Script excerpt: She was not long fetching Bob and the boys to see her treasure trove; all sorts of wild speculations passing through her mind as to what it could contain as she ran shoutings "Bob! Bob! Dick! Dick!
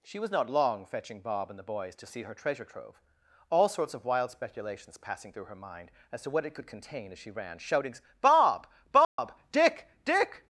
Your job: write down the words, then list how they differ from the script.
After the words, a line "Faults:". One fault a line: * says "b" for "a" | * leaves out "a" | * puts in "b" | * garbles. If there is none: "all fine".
She was not long fetching Bob and the boys to see her treasure trove; all sorts of wild speculations passing through her mind as to what it could contain as she ran shoutings "Bob! Bob! Dick! Dick!
Faults:
all fine